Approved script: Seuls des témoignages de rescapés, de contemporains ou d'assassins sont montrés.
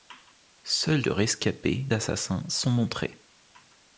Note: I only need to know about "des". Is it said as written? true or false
false